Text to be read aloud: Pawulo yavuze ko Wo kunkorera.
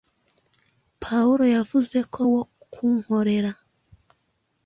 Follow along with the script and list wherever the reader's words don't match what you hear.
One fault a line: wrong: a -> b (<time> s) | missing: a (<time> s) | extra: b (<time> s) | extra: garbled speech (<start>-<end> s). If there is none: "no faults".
no faults